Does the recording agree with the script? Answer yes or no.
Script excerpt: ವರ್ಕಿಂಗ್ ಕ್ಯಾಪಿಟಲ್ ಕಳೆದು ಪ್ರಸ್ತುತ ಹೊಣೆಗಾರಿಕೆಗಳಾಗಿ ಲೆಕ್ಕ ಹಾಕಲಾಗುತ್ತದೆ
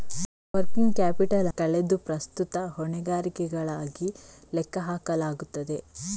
yes